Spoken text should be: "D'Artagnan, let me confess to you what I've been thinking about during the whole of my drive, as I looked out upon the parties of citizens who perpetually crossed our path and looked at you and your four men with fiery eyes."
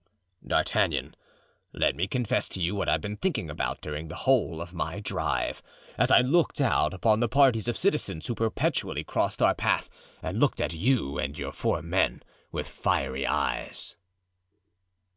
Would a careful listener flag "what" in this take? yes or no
no